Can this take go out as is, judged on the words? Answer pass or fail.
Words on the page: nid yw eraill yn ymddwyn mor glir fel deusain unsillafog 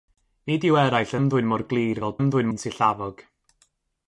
fail